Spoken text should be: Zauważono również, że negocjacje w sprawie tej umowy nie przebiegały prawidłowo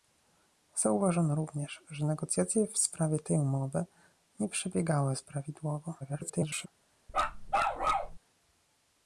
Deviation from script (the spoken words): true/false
true